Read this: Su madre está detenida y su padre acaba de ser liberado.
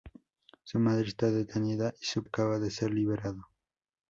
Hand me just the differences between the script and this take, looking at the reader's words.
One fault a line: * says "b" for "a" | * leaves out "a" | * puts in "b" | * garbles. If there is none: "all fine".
* leaves out "padre"